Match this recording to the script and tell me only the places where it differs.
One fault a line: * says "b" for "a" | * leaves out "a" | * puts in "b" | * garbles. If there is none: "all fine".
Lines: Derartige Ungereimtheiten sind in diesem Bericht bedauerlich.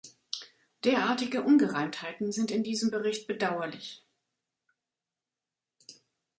all fine